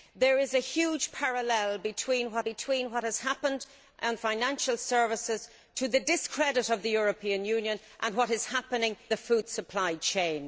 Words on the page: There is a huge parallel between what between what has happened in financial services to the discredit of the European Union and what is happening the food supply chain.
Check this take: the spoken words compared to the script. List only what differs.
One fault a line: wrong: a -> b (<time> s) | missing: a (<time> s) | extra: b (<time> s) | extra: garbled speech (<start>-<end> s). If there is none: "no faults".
no faults